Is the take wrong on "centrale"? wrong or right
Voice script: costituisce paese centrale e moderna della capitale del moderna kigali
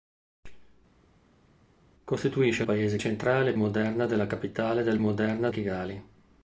right